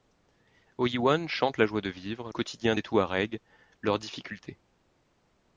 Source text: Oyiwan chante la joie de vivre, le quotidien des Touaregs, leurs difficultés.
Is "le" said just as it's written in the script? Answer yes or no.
no